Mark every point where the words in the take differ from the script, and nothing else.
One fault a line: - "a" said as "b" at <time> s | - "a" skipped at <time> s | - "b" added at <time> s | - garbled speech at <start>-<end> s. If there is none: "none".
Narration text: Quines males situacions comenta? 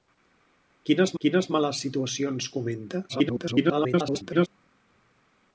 - "quines" added at 1.2 s
- garbled speech at 3.1-4.5 s